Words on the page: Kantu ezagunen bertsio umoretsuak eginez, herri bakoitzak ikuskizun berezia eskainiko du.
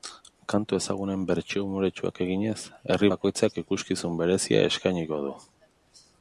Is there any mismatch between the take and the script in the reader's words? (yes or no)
no